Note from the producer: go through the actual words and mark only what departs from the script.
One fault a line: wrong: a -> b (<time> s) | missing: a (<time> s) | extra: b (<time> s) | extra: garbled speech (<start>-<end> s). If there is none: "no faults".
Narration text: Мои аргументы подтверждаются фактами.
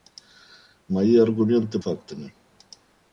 missing: подтверждаются (1.8 s)